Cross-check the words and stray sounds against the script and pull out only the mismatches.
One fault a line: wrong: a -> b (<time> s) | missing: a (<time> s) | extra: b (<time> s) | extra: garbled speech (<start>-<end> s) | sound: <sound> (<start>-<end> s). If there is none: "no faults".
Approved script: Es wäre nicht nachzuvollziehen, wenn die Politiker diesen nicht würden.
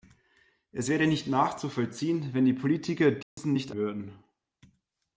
sound: dropout (3.2-3.4 s)